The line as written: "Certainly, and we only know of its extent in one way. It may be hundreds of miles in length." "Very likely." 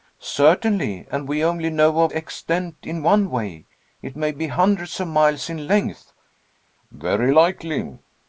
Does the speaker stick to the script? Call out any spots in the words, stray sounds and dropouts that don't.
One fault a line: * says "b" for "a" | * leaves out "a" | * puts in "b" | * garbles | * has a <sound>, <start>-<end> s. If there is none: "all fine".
* leaves out "its"